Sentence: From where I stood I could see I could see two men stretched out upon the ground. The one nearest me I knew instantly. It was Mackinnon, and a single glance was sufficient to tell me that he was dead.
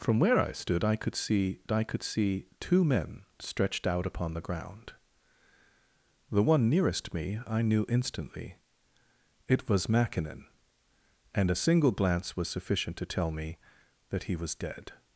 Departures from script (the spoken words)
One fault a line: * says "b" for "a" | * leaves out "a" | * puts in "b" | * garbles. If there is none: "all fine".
all fine